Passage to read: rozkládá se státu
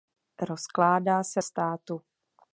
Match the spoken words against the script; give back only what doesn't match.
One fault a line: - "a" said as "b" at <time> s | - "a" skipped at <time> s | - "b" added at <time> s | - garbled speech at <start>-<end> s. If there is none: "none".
none